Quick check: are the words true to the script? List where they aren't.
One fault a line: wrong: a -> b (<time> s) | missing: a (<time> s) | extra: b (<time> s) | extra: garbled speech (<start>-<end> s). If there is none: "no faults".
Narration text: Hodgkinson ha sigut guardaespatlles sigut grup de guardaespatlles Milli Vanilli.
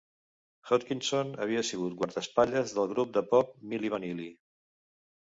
wrong: ha -> havia (1.4 s)
wrong: sigut -> del (2.8 s)
wrong: guardaespatlles -> pop (3.4 s)